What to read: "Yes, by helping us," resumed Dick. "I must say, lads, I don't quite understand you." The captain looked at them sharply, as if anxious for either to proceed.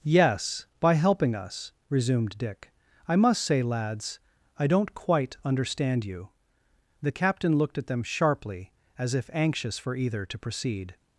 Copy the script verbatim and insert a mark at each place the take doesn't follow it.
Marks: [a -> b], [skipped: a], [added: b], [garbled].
"Yes, by helping us," resumed Dick. "I must say, lads, I don't quite understand you." The captain looked at them sharply, as if anxious for either to proceed.